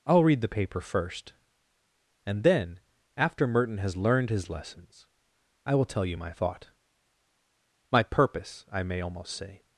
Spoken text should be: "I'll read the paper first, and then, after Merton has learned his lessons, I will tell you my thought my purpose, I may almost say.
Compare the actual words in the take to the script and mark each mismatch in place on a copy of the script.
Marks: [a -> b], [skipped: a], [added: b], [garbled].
"I'll read the paper first, and then, after Merton has learned his lessons, I will tell you my thought my purpose, I may almost say.